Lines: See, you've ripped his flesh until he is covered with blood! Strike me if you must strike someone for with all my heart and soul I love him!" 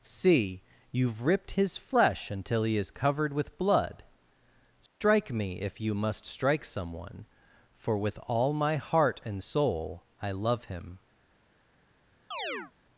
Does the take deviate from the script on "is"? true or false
false